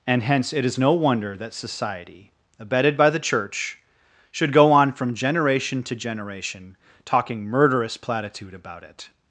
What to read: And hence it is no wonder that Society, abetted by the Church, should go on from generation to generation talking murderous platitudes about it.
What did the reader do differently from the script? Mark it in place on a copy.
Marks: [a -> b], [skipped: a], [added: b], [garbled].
And hence it is no wonder that Society, abetted by the Church, should go on from generation to generation talking murderous [platitudes -> platitude] about it.